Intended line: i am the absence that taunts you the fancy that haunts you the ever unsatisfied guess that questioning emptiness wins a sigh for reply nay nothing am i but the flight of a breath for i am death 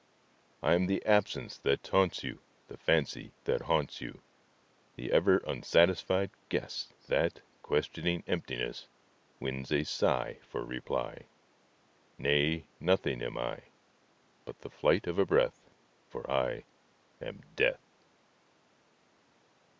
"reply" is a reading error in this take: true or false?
false